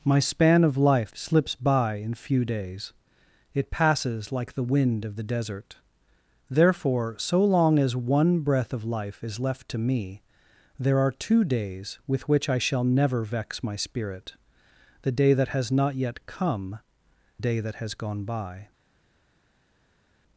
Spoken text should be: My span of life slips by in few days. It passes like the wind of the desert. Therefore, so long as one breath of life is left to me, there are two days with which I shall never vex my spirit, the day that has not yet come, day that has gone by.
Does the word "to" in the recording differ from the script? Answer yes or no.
no